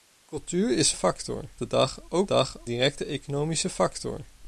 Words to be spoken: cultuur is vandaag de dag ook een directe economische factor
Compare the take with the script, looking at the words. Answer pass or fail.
fail